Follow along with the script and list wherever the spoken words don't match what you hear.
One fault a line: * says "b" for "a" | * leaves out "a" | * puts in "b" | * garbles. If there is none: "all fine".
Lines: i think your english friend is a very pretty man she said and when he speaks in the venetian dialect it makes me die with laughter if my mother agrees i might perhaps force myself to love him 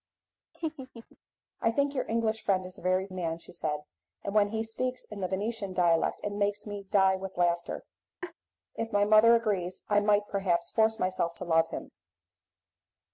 * leaves out "pretty"